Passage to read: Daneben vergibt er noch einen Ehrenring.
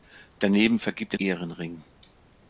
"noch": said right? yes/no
no